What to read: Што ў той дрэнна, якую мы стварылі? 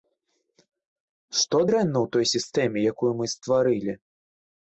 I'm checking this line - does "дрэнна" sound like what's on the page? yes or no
no